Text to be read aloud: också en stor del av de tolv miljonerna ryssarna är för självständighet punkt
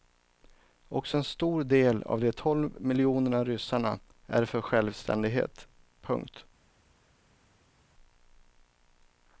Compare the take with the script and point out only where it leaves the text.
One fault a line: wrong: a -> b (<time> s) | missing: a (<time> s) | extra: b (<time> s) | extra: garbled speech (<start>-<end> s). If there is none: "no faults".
no faults